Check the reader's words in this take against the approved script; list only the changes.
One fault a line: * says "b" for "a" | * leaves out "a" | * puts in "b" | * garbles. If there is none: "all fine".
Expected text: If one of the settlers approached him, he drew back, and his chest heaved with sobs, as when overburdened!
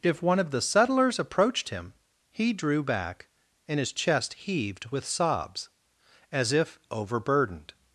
* says "if" for "when"